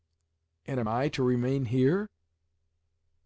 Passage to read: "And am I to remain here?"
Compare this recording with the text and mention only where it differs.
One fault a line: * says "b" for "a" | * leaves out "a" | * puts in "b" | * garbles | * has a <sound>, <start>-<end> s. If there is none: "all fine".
all fine